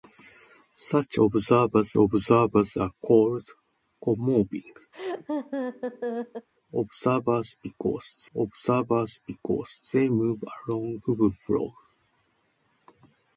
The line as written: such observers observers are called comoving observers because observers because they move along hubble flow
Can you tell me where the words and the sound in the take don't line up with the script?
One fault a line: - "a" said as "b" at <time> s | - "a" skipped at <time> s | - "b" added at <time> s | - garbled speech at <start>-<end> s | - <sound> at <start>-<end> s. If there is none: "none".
- laugh at 4.9-6.5 s